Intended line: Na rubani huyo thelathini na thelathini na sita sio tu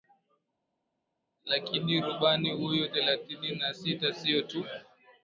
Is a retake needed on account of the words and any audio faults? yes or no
yes